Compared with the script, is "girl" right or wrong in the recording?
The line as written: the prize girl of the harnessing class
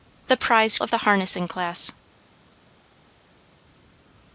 wrong